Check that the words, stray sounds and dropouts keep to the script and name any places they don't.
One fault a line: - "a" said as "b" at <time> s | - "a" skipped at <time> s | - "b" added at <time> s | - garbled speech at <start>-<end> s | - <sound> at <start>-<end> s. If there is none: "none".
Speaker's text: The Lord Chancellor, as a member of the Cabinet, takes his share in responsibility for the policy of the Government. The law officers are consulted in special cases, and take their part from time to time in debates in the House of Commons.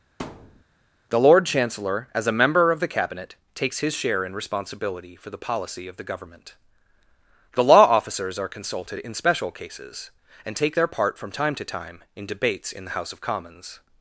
- thud at 0.2-0.6 s